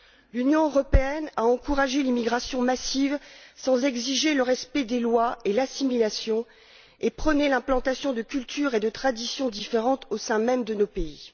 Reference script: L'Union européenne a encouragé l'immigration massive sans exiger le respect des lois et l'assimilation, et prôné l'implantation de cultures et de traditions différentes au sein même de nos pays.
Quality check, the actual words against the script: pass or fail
pass